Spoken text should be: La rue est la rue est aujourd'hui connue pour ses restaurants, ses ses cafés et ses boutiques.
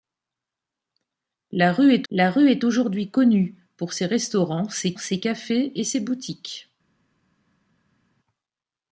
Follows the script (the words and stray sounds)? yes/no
yes